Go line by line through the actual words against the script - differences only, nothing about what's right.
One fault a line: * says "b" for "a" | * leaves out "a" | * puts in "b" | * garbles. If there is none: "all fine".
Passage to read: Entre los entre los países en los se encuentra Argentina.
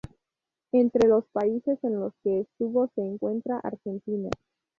* leaves out "entre los"
* puts in "que estuvo"